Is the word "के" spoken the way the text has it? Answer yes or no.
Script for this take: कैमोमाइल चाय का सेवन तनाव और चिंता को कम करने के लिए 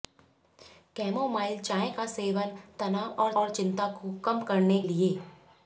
no